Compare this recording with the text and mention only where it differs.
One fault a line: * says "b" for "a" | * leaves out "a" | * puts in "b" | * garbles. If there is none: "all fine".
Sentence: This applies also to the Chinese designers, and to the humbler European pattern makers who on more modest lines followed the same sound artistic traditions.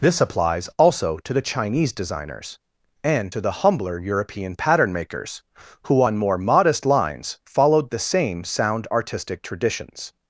all fine